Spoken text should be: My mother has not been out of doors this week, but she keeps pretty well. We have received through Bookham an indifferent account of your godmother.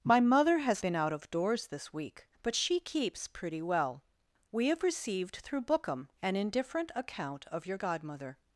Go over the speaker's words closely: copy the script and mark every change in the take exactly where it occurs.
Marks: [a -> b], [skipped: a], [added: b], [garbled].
My mother has [skipped: not] been out of doors this week, but she keeps pretty well. We have received through Bookham an indifferent account of your godmother.